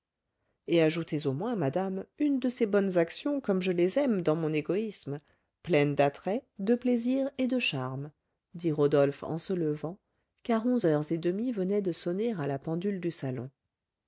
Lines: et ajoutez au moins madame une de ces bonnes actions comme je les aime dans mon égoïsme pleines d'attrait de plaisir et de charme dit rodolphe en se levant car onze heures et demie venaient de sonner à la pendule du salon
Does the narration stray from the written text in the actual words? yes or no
no